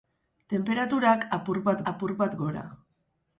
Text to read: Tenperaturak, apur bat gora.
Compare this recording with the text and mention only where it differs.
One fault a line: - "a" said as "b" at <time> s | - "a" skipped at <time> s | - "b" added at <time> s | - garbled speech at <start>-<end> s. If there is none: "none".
- "apur bat" added at 1.9 s